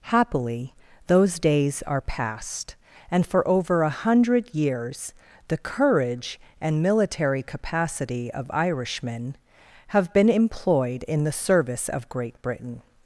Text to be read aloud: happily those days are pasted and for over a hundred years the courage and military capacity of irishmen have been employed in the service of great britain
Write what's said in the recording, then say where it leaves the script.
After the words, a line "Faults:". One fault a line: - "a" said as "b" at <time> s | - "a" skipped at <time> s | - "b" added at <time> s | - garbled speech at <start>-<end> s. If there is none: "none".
happily those days are past and for over a hundred years the courage and military capacity of irishmen have been employed in the service of great britain
Faults:
- "pasted" said as "past" at 2.0 s